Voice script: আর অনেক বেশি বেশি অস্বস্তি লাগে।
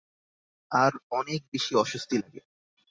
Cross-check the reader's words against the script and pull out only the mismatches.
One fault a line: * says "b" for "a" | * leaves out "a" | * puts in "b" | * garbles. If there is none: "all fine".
* leaves out "বেশি"